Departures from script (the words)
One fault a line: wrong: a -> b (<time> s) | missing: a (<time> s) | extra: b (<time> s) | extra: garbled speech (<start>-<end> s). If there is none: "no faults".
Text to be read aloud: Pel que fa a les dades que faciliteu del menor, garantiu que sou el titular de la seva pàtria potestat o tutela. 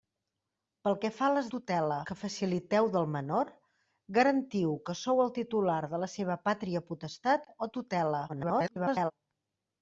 wrong: dades -> tutela (1.6 s)
extra: garbled speech (8.3-9.1 s)